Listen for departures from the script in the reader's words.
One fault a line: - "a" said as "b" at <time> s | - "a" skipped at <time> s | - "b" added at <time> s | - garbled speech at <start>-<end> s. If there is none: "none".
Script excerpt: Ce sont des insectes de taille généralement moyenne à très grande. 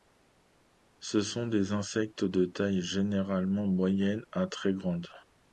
none